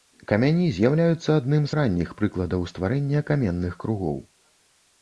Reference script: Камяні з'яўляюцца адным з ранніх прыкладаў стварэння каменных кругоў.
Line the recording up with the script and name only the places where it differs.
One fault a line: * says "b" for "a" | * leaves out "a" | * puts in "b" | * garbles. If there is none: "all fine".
all fine